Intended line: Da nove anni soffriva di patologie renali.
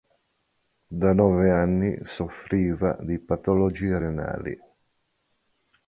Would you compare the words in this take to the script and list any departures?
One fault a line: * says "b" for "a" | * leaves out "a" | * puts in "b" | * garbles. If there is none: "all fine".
all fine